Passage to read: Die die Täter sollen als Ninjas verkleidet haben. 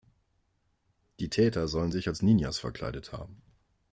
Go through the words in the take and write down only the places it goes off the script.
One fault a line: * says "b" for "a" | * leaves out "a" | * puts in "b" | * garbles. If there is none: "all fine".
* leaves out "die"
* puts in "sich"